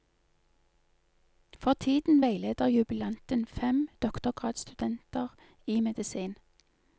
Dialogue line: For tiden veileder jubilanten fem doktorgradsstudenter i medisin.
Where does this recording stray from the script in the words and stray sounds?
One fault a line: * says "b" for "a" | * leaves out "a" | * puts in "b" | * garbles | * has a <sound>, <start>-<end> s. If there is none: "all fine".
all fine